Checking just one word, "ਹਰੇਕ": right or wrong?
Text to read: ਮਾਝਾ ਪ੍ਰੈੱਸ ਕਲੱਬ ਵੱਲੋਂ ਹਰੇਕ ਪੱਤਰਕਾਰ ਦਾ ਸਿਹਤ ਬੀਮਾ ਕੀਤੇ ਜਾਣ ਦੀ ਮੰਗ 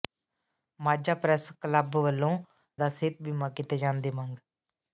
wrong